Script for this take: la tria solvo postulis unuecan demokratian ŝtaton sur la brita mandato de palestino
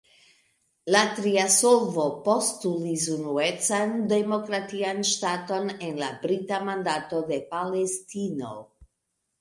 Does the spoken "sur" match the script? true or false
false